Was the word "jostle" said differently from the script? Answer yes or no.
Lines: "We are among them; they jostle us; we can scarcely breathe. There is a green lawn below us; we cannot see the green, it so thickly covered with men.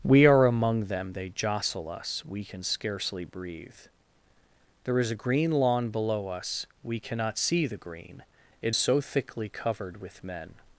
no